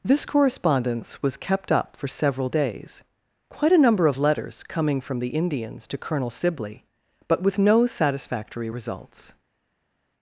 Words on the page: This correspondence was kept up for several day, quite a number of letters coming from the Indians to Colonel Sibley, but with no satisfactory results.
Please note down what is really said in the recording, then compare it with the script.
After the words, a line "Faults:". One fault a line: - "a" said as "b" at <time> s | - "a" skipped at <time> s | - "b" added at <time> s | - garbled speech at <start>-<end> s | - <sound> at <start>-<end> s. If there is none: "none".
This correspondence was kept up for several days, quite a number of letters coming from the Indians to Colonel Sibley, but with no satisfactory results.
Faults:
- "day" said as "days" at 2.5 s